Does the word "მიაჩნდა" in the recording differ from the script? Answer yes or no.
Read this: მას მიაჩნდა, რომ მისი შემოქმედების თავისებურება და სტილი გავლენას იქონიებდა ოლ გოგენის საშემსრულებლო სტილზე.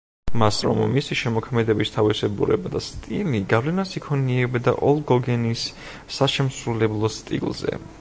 yes